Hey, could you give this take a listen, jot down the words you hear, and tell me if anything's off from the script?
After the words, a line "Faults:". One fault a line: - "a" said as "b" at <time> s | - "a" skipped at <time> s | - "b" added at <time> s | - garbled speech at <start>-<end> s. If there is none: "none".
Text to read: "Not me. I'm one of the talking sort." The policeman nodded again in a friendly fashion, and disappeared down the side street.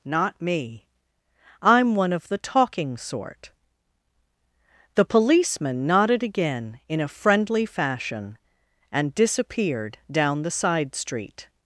"Not me. I'm one of the talking sort." The policeman nodded again in a friendly fashion, and disappeared down the side street.
Faults:
none